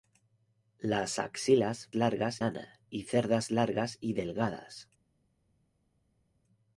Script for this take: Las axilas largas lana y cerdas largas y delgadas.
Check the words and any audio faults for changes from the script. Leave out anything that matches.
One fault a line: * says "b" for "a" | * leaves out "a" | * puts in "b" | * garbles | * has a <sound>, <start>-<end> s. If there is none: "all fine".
all fine